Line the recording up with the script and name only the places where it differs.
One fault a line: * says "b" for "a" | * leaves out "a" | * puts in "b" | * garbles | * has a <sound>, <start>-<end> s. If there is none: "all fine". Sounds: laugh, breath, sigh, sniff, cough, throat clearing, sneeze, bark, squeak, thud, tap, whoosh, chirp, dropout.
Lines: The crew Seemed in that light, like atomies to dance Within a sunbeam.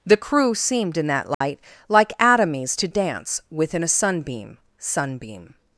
* has a dropout, 1.3-1.4 s
* puts in "sunbeam"